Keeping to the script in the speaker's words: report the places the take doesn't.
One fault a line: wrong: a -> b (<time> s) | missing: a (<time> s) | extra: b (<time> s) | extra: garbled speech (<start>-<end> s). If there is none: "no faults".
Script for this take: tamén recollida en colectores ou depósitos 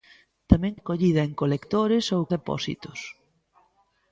no faults